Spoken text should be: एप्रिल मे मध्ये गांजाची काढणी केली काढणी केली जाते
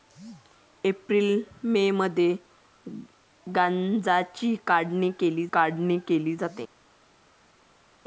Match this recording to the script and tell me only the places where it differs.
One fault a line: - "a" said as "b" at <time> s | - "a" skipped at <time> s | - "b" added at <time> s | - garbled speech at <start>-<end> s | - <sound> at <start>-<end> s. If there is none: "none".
none